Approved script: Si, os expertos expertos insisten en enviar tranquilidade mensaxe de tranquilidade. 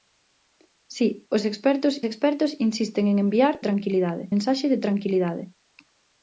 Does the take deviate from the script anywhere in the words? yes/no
no